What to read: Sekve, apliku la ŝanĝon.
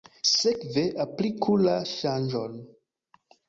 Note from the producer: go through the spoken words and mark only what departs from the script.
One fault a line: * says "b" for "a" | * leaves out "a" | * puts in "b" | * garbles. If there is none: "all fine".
all fine